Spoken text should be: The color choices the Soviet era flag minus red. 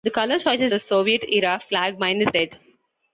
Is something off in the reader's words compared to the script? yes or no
no